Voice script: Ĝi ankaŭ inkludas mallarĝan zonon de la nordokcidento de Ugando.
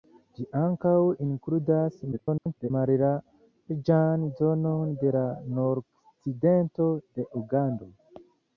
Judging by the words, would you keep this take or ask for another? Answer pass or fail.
fail